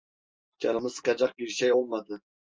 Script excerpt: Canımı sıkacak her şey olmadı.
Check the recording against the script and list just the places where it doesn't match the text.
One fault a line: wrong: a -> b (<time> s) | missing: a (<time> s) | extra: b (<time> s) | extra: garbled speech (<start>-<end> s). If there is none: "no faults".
wrong: her -> bir (1.4 s)